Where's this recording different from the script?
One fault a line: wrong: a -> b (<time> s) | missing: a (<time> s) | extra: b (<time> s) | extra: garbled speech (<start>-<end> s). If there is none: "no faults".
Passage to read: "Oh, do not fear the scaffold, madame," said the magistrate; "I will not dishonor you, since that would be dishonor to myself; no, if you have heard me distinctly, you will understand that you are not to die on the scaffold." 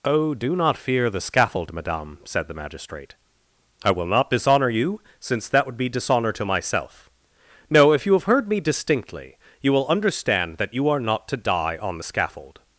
no faults